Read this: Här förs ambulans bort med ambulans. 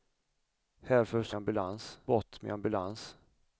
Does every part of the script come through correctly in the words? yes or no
yes